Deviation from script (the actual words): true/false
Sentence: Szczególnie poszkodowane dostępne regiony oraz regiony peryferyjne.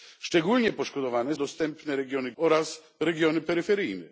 false